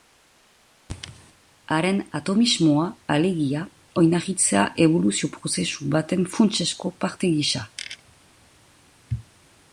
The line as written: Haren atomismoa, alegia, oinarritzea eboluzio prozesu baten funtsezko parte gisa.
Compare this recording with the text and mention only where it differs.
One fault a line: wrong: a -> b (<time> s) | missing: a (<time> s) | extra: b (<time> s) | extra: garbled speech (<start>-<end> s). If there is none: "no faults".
no faults